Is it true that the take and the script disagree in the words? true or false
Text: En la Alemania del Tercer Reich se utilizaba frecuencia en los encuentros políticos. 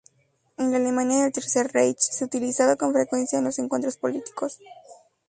true